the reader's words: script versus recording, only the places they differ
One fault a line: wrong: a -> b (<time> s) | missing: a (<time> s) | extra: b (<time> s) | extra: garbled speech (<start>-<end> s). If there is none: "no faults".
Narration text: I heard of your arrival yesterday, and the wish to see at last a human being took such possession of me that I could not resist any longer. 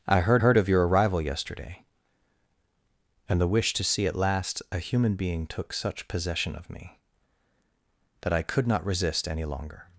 extra: heard (0.4 s)